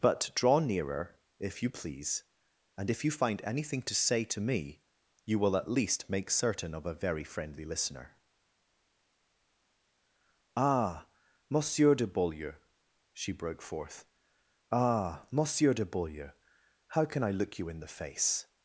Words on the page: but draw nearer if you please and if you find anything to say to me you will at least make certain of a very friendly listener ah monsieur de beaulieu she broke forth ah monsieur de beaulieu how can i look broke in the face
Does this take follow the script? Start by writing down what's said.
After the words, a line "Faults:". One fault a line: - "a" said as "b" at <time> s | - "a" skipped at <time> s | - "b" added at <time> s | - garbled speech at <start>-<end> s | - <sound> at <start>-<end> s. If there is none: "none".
but draw nearer if you please and if you find anything to say to me you will at least make certain of a very friendly listener ah monsieur de beaulieu she broke forth ah monsieur de beaulieu how can i look you in the face
Faults:
- "broke" said as "you" at 17.6 s